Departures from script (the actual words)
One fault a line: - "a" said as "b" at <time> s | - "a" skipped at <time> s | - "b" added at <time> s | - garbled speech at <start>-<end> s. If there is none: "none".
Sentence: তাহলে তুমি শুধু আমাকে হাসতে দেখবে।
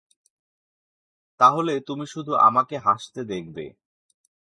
none